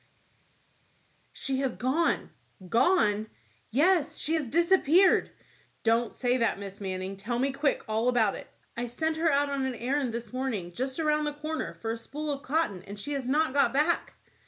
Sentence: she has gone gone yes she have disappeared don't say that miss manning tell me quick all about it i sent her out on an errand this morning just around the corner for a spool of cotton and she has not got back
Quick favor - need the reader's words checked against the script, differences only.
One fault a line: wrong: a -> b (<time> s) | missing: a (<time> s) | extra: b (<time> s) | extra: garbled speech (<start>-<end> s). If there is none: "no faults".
wrong: have -> has (4.3 s)